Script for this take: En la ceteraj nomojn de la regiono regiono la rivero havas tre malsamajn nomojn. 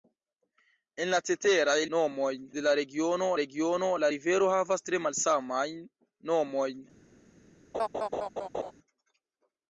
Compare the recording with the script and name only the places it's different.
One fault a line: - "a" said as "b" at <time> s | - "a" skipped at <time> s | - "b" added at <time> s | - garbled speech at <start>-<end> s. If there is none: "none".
none